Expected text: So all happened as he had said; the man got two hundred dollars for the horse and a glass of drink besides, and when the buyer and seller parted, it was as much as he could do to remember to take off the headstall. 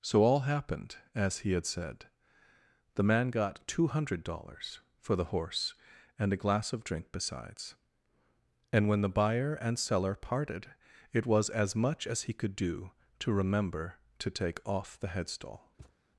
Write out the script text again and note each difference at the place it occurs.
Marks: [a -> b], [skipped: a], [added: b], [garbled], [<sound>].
So all happened as he had said; the man got two hundred dollars for the horse and a glass of drink besides, and when the buyer and seller parted, it was as much as he could do to remember to take off the headstall. [thud]